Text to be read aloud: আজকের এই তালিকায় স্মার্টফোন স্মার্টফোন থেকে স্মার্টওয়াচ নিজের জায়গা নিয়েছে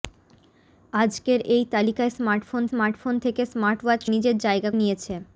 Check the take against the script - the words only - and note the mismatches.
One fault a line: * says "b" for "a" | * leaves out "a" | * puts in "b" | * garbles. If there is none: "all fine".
all fine